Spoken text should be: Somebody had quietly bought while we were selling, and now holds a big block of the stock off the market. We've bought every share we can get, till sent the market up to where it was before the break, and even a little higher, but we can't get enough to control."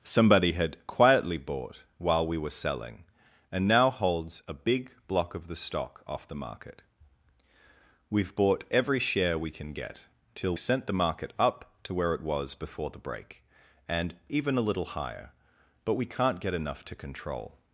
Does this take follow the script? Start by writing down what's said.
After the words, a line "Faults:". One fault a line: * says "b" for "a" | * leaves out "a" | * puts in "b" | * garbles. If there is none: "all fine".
Somebody had quietly bought while we were selling, and now holds a big block of the stock off the market. We've bought every share we can get, till sent the market up to where it was before the break, and even a little higher, but we can't get enough to control."
Faults:
all fine